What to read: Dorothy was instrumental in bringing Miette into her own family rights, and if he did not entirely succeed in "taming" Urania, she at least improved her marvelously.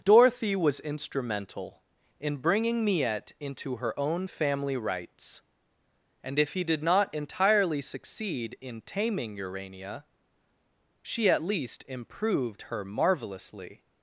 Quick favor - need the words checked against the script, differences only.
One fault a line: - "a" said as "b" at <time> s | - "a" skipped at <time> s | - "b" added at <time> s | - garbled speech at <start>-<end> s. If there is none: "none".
none